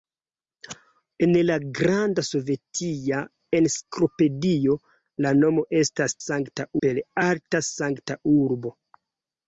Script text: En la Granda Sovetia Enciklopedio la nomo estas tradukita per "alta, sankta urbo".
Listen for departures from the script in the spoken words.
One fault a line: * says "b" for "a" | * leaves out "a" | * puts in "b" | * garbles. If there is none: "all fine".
* says "sankta" for "tradukita"